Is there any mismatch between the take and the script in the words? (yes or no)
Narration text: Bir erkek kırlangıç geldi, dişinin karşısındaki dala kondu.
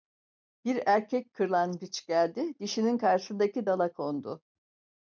no